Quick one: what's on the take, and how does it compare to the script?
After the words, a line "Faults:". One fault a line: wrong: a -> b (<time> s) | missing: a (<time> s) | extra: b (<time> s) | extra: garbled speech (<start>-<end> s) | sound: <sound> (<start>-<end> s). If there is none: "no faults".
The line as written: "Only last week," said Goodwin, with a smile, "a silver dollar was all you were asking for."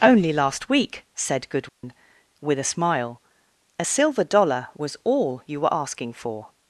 "Only last week," said Goodwin, with a smile, "a silver dollar was all you were asking for."
Faults:
sound: dropout (1.7-1.8 s)